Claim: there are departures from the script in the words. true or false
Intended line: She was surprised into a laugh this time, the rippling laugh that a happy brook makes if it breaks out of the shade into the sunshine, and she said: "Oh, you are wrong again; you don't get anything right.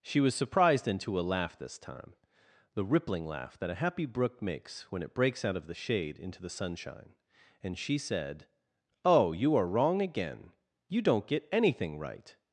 true